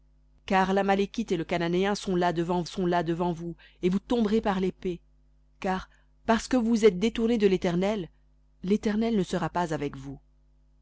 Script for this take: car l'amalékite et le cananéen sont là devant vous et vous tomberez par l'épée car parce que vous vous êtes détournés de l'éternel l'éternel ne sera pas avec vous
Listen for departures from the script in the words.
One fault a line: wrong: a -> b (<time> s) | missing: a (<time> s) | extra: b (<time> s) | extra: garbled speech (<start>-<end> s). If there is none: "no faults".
extra: sont là devant (2.6 s)